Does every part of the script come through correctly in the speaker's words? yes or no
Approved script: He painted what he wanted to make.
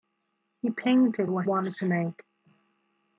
no